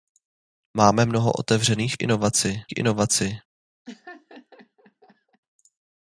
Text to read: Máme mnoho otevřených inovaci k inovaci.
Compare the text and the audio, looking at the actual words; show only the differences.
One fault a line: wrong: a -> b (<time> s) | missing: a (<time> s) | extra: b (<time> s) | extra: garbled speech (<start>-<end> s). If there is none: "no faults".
no faults